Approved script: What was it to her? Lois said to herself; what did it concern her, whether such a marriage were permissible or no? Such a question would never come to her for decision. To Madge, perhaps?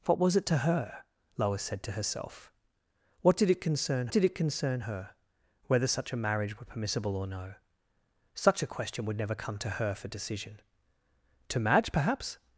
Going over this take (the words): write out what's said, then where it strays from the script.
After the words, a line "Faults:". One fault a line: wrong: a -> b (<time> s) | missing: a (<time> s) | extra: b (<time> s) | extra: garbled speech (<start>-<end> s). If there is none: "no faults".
What was it to her? Lois said to herself; what did it concern did it concern her, whether such a marriage were permissible or no? Such a question would never come to her for decision. To Madge, perhaps?
Faults:
extra: did it concern (4.1 s)